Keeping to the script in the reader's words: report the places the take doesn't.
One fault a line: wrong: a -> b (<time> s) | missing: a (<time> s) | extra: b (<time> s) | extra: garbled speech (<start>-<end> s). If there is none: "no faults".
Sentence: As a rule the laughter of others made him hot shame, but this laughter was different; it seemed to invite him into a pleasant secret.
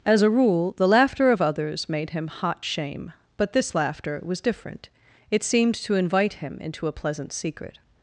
no faults